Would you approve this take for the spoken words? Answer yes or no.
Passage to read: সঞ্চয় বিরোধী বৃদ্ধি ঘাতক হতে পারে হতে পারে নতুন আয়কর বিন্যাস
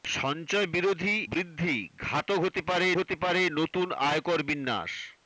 yes